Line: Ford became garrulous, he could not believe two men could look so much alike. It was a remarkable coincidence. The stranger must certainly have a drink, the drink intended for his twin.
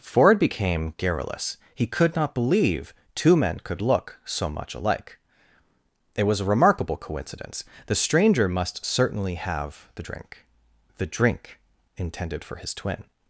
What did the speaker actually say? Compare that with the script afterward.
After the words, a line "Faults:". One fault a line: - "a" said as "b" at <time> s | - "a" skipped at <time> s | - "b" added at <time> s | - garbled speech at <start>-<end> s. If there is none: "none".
Ford became garrulous, he could not believe two men could look so much alike. It was a remarkable coincidence. The stranger must certainly have the drink, the drink intended for his twin.
Faults:
- "a" said as "the" at 9.9 s